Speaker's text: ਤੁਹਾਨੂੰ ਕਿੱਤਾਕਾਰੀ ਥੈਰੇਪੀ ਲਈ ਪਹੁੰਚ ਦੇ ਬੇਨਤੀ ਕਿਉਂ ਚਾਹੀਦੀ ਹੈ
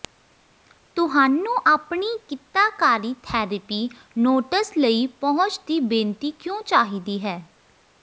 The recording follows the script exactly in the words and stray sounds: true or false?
false